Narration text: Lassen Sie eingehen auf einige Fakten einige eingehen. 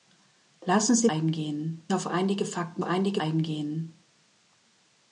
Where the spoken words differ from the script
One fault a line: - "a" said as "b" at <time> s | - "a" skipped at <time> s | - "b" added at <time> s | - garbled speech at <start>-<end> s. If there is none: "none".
none